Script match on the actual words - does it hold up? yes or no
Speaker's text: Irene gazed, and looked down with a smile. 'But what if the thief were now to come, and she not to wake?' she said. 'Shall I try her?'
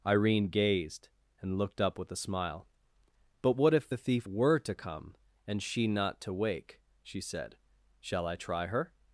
no